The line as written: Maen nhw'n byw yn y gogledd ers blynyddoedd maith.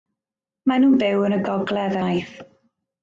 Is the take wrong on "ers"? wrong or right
wrong